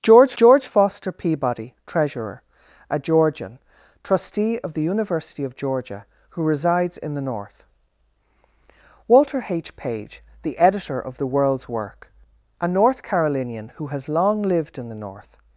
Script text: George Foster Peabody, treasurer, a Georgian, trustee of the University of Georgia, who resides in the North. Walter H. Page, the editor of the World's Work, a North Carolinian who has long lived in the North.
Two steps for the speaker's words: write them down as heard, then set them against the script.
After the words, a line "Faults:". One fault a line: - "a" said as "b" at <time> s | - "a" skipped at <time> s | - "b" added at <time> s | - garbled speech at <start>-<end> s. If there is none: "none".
George george Foster Peabody, treasurer, a Georgian, trustee of the University of Georgia, who resides in the North. Walter H. Page, the editor of the World's Work, a North Carolinian who has long lived in the North.
Faults:
- "george" added at 0.4 s